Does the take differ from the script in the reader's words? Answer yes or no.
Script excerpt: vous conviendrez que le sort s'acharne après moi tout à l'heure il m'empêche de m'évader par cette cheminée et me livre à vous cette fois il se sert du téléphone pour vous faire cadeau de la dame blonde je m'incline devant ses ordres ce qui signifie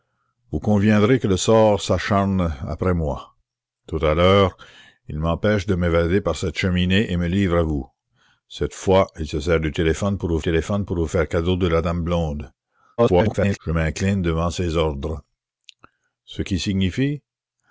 yes